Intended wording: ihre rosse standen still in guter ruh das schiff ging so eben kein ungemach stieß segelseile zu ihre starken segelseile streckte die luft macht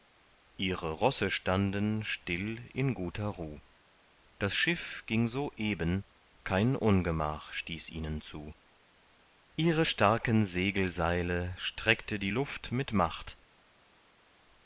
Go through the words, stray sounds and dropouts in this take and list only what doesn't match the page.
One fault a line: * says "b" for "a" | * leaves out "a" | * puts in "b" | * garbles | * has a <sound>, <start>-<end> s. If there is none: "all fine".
* says "ihnen" for "segelseile"
* puts in "mit"